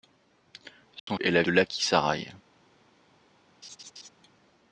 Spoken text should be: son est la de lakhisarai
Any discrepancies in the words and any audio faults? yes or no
yes